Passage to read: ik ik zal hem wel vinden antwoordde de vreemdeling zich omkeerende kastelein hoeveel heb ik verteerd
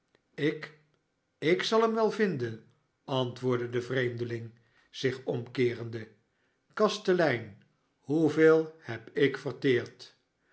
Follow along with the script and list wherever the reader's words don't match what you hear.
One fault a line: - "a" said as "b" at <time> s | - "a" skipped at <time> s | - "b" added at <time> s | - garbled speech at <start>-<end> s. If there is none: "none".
none